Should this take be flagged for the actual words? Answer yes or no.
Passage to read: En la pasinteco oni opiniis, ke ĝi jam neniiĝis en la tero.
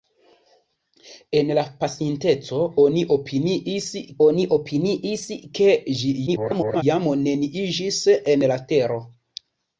yes